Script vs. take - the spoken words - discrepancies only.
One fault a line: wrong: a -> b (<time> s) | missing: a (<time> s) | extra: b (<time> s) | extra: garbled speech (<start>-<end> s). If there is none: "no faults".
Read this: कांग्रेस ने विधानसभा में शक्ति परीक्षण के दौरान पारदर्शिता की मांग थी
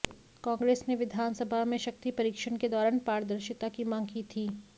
extra: की (4.1 s)